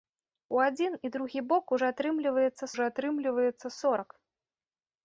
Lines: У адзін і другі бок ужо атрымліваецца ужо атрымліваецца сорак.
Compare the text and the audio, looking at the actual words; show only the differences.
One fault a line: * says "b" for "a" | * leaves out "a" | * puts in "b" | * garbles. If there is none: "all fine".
all fine